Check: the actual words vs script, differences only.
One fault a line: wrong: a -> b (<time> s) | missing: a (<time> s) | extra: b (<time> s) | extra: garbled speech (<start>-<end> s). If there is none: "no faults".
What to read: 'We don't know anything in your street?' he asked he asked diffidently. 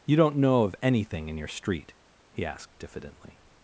wrong: We -> You (0.0 s)
extra: of (0.6 s)
missing: he asked (2.8 s)